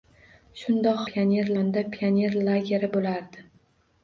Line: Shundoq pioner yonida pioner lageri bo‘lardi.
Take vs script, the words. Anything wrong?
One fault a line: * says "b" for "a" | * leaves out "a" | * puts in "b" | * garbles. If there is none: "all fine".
all fine